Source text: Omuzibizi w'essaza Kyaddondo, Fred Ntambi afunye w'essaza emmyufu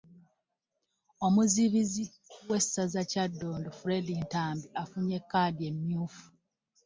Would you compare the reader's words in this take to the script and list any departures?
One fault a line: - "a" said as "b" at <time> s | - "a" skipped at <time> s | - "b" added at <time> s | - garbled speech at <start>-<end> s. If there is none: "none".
- "w'essaza" said as "kkaadi" at 5.2 s